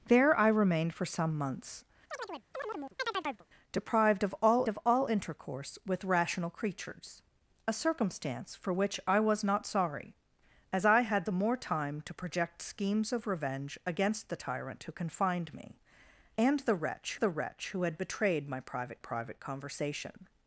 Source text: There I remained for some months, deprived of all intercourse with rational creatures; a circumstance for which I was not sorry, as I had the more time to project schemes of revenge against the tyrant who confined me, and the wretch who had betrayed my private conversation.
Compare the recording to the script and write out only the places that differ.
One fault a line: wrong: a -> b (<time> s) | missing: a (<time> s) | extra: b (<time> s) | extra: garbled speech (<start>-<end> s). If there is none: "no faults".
extra: of all (4.7 s)
extra: the wretch (17.1 s)
extra: private (19.0 s)